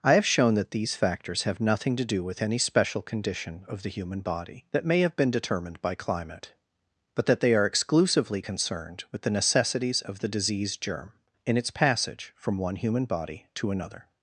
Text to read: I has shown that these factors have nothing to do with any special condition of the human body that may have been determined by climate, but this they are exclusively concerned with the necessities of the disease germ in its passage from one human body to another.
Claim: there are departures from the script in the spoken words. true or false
true